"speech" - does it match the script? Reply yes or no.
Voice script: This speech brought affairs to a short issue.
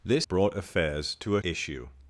no